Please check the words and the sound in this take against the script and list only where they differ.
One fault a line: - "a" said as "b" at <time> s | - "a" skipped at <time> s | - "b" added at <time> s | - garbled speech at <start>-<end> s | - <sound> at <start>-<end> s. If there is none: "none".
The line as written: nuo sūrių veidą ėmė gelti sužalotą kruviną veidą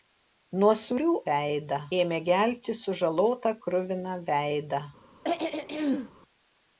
- throat clearing at 5.2-6.1 s